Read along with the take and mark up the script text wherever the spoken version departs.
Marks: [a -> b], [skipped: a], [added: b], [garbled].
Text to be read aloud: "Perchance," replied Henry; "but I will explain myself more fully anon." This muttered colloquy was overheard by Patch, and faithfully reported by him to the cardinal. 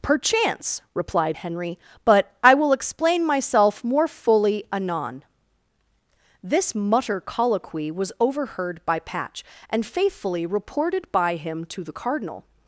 "Perchance," replied Henry; "but I will explain myself more fully anon." This [muttered -> mutter] colloquy was overheard by Patch, and faithfully reported by him to the cardinal.